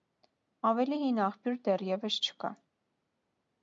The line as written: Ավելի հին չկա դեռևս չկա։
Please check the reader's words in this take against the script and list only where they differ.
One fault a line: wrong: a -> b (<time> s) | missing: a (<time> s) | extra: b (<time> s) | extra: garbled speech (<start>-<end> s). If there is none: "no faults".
wrong: չկա -> աղբյուր (1.3 s)